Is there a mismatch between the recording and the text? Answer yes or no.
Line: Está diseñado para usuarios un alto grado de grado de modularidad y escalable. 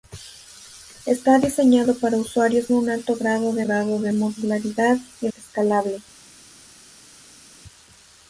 no